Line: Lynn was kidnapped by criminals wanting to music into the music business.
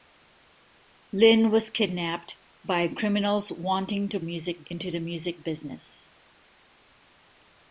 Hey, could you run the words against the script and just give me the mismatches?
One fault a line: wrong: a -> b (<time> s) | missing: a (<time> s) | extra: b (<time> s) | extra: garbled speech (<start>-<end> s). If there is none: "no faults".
no faults